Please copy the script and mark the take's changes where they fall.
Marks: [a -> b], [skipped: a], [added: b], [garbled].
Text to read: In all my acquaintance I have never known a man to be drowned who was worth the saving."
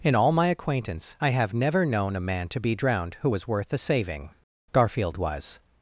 In all my acquaintance I have never known a man to be drowned who was worth the saving." [added: Garfield was]